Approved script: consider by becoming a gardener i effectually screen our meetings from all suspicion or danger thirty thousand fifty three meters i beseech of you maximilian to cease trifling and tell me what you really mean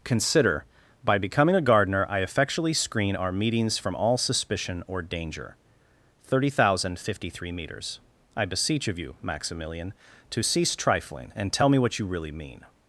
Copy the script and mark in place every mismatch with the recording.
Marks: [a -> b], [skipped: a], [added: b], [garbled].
consider by becoming a gardener i effectually screen our meetings from all suspicion or danger thirty thousand fifty three meters i beseech of you maximilian to cease trifling and tell me what you really mean